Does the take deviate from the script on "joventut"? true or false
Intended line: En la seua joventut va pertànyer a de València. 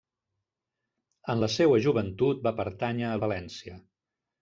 false